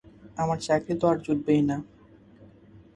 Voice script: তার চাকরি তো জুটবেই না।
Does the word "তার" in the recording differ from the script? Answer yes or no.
yes